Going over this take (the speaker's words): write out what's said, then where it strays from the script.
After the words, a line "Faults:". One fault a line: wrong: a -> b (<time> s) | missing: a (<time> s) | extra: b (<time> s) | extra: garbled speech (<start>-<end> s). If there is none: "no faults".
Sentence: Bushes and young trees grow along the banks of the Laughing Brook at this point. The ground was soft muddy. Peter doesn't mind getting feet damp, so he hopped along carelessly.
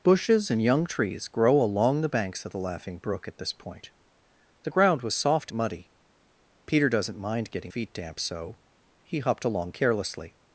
Bushes and young trees grow along the banks of the Laughing Brook at this point. The ground was soft muddy. Peter doesn't mind getting feet damp, so he hopped along carelessly.
Faults:
no faults